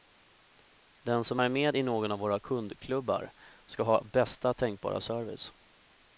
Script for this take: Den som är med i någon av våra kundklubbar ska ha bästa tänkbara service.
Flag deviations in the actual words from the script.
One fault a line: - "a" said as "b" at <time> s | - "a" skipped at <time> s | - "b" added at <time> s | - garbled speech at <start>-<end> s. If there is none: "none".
none